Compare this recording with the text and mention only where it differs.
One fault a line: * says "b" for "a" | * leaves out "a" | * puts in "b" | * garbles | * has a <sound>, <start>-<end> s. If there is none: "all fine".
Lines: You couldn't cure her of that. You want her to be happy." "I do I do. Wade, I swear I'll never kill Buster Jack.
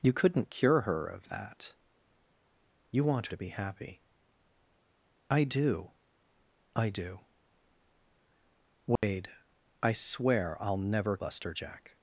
* leaves out "her"
* has a dropout, 9.0-9.0 s
* leaves out "kill"